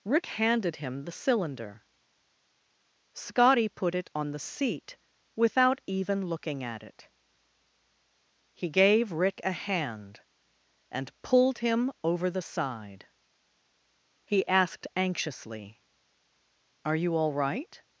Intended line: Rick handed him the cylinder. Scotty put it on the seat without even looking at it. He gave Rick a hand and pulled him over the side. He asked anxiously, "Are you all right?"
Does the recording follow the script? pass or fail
pass